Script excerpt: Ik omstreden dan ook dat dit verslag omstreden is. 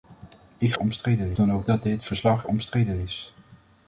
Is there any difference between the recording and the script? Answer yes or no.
no